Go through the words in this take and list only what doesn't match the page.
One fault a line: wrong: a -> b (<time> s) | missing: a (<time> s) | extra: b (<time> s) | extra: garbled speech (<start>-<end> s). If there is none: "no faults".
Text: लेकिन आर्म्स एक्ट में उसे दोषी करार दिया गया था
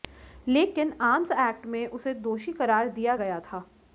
no faults